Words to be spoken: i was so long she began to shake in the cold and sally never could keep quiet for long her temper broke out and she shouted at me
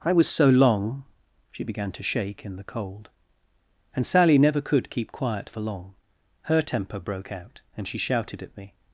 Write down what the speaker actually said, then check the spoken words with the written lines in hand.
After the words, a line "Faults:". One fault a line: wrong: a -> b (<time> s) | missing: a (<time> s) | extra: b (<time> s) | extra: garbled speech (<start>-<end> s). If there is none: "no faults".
i was so long she began to shake in the cold and sally never could keep quiet for long her temper broke out and she shouted at me
Faults:
no faults